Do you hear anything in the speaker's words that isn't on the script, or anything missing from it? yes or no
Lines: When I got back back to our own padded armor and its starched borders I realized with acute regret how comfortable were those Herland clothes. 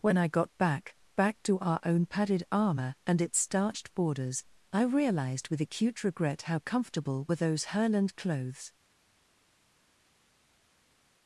no